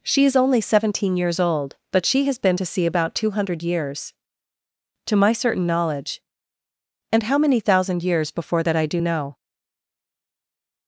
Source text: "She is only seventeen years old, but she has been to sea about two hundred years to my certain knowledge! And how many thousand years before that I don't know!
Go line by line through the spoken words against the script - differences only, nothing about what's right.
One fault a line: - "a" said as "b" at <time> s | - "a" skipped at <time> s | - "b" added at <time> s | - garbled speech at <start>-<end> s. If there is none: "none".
- "don't" said as "do" at 8.8 s